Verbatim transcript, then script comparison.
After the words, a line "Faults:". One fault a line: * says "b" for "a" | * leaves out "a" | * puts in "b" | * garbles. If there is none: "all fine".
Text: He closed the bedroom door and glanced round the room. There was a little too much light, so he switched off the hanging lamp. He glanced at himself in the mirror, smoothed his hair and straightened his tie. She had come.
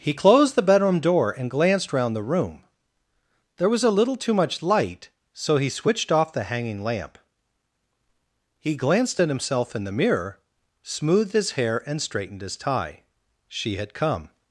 He closed the bedroom door and glanced round the room. There was a little too much light, so he switched off the hanging lamp. He glanced at himself in the mirror, smoothed his hair and straightened his tie. She had come.
Faults:
all fine